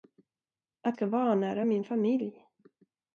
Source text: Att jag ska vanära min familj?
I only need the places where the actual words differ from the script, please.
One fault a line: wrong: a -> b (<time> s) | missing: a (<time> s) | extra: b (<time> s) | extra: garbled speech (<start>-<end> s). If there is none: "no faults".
missing: jag (1.0 s)